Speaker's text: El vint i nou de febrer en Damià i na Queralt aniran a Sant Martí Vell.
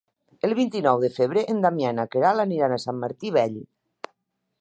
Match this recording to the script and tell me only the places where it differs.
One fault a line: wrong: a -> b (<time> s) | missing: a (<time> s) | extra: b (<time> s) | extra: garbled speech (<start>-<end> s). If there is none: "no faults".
no faults